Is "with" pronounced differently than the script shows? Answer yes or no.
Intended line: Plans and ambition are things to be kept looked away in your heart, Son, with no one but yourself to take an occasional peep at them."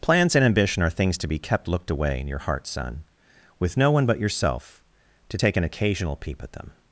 no